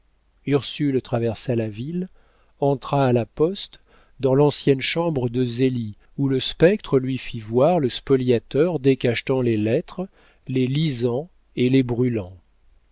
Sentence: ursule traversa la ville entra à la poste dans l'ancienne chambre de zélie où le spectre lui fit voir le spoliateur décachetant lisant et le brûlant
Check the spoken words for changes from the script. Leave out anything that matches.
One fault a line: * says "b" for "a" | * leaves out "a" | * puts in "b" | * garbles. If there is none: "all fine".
* puts in "les lettres les"
* says "les" for "le"